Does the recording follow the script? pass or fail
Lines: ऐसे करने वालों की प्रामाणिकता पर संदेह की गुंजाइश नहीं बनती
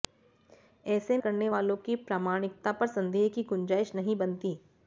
pass